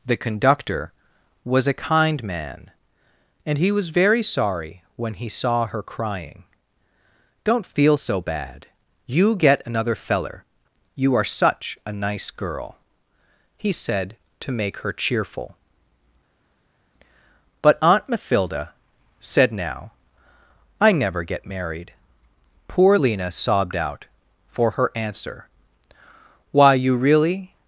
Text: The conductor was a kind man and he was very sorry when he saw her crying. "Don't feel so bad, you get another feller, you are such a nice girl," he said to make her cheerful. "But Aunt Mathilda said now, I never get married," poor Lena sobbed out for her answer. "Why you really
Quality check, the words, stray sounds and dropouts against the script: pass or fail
pass